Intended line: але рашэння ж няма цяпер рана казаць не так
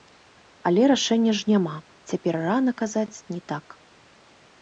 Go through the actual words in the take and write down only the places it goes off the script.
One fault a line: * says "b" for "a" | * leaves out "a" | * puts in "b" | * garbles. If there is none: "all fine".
all fine